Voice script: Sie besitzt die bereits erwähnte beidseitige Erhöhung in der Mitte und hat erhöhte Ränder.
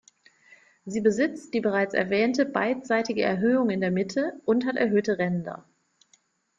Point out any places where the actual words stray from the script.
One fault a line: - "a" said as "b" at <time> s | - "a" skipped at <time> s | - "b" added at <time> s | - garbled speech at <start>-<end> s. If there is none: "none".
none